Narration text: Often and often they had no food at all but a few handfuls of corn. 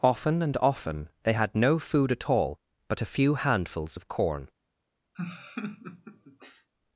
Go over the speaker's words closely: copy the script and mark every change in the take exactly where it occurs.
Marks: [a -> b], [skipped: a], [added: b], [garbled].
Often and often they had no food at all but a few handfuls of corn.